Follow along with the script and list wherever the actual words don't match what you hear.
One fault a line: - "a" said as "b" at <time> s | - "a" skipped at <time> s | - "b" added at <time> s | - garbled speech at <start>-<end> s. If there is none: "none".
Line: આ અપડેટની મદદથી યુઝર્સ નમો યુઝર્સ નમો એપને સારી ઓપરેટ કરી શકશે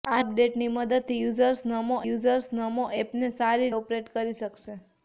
none